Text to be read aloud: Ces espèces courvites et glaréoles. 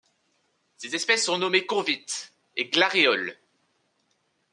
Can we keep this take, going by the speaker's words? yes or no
no